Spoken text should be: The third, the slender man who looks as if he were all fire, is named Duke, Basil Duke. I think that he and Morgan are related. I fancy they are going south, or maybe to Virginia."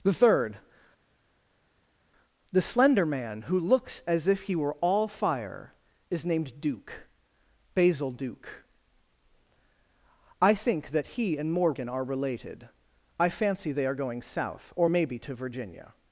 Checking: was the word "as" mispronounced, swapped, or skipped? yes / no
no